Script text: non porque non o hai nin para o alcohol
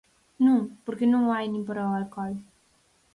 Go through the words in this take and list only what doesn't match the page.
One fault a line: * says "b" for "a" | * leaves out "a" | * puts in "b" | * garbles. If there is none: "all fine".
all fine